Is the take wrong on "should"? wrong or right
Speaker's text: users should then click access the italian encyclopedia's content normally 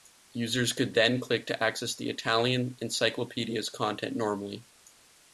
wrong